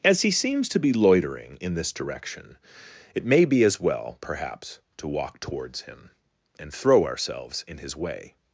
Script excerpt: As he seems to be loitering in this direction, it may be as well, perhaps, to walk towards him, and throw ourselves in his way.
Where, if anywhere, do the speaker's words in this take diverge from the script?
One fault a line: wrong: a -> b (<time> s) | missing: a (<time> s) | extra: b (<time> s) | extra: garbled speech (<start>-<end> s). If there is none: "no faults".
no faults